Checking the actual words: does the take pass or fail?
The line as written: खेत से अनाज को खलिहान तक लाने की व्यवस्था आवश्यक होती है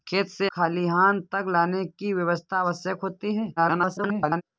fail